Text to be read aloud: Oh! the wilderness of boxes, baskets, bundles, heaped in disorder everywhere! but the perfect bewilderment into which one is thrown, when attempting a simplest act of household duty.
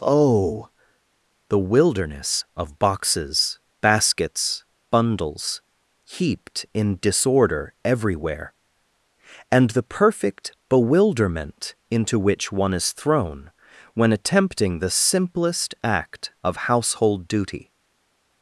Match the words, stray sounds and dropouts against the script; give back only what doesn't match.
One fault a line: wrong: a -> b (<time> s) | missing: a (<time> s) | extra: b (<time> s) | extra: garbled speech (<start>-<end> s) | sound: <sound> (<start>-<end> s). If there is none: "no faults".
wrong: but -> and (9.5 s)
wrong: a -> the (14.8 s)